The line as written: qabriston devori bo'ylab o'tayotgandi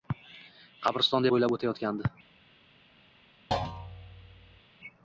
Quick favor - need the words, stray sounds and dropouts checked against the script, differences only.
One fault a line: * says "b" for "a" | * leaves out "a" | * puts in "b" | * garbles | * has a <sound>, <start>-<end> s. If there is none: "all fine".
* leaves out "devori"
* has a thud, 3.5-4.6 s